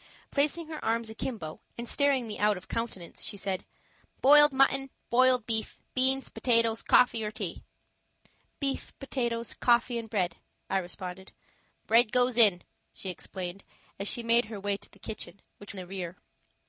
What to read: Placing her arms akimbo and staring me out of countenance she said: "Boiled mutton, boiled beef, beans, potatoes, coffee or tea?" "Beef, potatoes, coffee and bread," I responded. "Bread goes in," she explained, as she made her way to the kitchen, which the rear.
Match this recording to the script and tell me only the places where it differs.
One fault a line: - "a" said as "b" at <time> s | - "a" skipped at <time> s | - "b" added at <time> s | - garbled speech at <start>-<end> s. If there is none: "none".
none